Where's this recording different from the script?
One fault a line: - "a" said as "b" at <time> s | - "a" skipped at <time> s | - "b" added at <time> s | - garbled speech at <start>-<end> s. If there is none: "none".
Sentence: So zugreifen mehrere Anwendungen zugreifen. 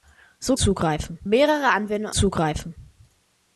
none